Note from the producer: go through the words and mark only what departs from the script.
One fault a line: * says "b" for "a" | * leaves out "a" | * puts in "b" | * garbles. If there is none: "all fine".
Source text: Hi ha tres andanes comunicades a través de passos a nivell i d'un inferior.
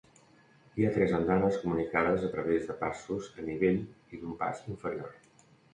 * puts in "pas"